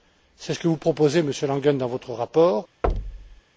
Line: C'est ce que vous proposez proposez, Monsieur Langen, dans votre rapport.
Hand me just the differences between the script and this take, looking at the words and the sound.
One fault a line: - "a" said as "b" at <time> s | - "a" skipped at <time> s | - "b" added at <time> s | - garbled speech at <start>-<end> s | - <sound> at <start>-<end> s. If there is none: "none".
- "proposez" skipped at 1.2 s
- thud at 2.8-3.4 s